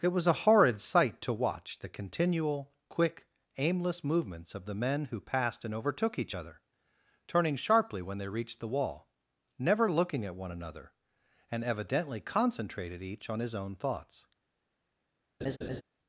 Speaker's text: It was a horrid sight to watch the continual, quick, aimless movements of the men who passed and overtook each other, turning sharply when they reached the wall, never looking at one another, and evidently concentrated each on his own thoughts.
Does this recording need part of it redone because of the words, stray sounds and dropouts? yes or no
yes